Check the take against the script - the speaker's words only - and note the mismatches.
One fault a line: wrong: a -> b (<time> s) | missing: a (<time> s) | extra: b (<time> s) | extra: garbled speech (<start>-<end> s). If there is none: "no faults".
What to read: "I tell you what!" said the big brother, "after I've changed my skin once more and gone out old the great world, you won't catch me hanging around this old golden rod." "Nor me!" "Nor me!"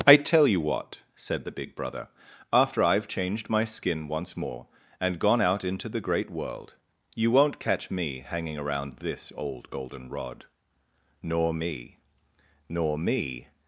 wrong: old -> into (5.6 s)